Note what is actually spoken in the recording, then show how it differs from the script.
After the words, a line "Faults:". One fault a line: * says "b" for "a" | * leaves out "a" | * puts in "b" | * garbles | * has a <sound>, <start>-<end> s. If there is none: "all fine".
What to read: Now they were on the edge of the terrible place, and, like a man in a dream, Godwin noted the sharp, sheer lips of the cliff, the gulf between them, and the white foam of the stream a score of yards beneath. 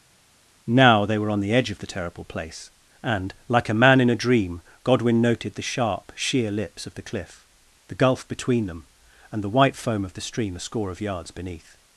Now they were on the edge of the terrible place, and, like a man in a dream, Godwin noted the sharp, sheer lips of the cliff, the gulf between them, and the white foam of the stream a score of yards beneath.
Faults:
all fine